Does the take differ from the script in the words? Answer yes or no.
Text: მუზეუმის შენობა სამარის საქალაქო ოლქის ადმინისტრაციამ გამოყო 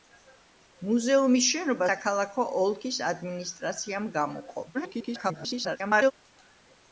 yes